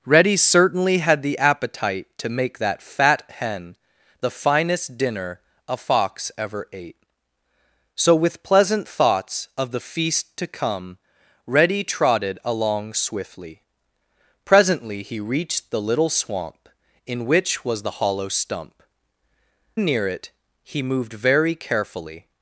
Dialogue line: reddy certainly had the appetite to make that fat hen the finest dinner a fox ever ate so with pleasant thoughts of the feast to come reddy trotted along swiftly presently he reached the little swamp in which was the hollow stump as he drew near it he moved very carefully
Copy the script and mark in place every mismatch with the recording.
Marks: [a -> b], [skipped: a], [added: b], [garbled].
reddy certainly had the appetite to make that fat hen the finest dinner a fox ever ate so with pleasant thoughts of the feast to come reddy trotted along swiftly presently he reached the little swamp in which was the hollow stump [skipped: as he drew] near it he moved very carefully